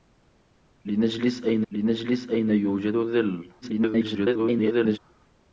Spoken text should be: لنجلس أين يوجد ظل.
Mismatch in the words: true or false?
true